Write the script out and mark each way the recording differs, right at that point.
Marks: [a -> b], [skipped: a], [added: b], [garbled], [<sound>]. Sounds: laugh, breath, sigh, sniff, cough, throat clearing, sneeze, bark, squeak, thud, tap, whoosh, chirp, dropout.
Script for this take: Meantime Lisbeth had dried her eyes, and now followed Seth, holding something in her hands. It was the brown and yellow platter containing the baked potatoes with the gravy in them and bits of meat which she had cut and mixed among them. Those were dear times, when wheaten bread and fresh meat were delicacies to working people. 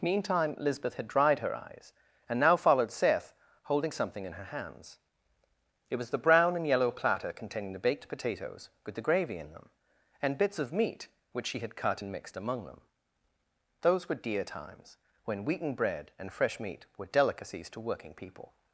Meantime Lisbeth had dried her eyes, and now followed Seth, holding something in her hands. It was the brown and yellow platter containing the baked potatoes with the gravy in them and bits of meat which she had cut and mixed among them. Those were dear times, when wheaten bread and fresh meat were delicacies to working people.